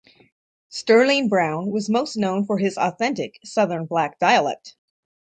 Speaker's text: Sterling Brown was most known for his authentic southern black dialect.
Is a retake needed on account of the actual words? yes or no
no